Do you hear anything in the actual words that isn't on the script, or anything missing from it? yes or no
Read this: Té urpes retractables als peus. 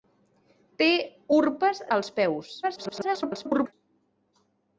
yes